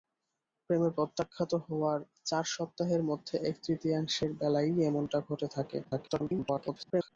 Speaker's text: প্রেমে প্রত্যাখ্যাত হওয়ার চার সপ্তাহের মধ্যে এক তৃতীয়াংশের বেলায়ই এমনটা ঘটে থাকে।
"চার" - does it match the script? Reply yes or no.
yes